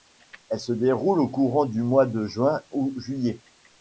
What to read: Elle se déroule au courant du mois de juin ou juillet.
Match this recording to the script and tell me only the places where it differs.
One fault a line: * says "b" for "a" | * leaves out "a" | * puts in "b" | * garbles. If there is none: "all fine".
all fine